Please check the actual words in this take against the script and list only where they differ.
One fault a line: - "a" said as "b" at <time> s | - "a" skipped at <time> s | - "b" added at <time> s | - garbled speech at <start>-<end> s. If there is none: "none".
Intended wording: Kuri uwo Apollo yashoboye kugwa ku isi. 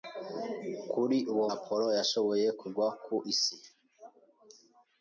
none